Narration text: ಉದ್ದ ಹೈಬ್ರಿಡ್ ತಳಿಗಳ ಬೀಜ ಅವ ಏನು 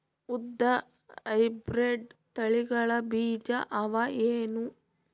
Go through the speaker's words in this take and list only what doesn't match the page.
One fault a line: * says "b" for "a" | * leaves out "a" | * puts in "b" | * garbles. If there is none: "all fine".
all fine